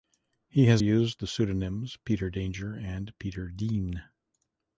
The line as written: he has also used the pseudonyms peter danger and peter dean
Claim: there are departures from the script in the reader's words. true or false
true